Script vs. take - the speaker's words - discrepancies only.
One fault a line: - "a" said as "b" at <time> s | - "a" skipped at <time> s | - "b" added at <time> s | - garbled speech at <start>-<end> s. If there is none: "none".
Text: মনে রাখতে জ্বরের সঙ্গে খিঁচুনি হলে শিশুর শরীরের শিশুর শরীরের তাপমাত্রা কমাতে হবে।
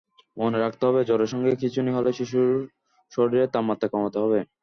- "হবে" added at 0.9 s
- "শিশুর শরীরের" skipped at 3.5 s